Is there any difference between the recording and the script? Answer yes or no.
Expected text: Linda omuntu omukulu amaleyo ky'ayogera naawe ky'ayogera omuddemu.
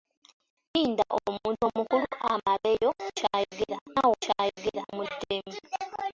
no